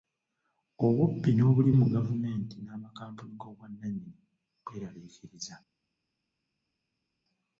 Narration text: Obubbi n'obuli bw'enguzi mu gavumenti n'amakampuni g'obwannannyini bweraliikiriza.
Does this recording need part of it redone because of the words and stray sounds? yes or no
yes